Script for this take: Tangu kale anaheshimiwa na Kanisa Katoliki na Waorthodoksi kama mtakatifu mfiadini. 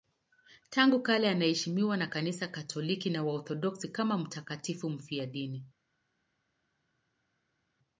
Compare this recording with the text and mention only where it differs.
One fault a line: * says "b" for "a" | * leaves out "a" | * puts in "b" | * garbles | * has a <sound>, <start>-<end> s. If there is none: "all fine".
all fine